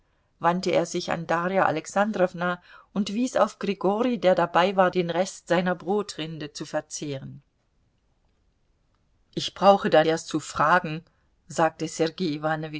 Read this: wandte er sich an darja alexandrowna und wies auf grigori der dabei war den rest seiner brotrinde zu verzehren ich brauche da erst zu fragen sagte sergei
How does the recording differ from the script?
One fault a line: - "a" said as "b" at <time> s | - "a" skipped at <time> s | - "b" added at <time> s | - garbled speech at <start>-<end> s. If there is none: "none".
none